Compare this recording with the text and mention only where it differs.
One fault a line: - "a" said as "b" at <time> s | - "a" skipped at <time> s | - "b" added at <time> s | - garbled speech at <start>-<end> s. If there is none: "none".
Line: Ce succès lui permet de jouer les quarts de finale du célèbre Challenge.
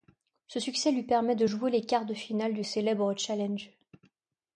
none